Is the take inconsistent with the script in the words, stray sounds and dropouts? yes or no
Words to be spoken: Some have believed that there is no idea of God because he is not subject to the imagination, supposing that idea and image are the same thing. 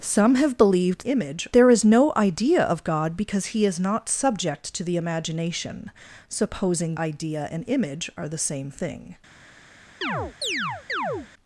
yes